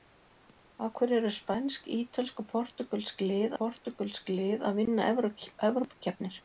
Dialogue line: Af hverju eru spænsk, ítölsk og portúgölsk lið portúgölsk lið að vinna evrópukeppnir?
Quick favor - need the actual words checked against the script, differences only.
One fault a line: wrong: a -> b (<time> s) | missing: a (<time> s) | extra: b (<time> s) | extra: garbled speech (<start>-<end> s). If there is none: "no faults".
no faults